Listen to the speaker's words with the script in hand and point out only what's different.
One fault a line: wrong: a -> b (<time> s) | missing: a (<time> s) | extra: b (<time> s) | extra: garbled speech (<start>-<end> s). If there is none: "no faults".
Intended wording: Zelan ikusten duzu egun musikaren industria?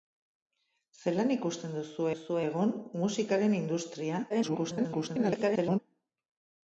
extra: duzu (2.1 s)
extra: garbled speech (4.3-5.8 s)